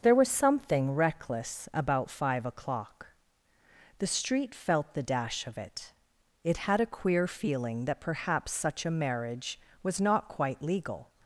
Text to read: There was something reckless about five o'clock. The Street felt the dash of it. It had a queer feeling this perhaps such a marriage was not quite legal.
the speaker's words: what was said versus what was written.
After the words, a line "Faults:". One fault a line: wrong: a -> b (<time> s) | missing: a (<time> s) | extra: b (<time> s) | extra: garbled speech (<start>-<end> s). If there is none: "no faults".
There was something reckless about five o'clock. The Street felt the dash of it. It had a queer feeling that perhaps such a marriage was not quite legal.
Faults:
wrong: this -> that (7.9 s)